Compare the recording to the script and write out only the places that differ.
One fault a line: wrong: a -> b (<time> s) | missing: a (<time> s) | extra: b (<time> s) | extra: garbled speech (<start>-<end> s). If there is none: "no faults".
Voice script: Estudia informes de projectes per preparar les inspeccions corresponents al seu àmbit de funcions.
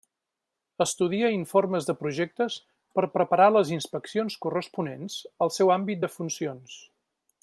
no faults